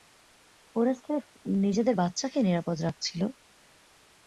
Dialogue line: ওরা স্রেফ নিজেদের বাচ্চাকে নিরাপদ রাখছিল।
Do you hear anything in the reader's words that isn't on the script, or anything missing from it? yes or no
no